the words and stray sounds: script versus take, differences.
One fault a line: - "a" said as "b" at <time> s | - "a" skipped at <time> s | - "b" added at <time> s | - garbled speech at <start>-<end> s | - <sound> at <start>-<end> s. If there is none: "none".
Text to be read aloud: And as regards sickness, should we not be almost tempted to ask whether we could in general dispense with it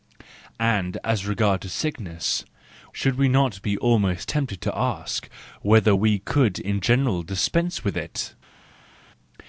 none